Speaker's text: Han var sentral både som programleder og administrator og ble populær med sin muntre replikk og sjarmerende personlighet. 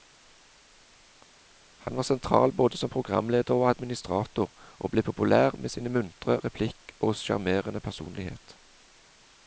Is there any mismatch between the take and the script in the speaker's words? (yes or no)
no